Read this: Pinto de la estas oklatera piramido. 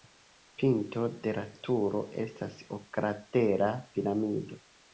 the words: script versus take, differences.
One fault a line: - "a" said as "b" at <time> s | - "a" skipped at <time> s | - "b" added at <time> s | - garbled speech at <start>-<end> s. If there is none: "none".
- "turo" added at 1.7 s